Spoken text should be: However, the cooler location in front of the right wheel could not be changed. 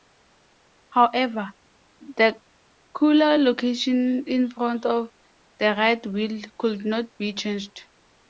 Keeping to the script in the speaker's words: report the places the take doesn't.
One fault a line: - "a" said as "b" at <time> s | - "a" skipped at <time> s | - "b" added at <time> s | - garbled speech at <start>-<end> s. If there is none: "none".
none